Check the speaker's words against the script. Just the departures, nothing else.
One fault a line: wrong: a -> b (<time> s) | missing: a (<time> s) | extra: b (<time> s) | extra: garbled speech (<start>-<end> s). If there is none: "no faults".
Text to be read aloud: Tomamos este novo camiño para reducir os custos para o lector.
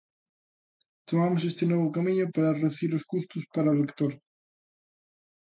no faults